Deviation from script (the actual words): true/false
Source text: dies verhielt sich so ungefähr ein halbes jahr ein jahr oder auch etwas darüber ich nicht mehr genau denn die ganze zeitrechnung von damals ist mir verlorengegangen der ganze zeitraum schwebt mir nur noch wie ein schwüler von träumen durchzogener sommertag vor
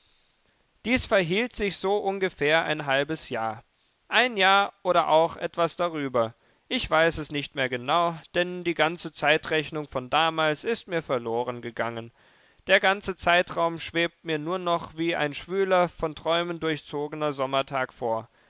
true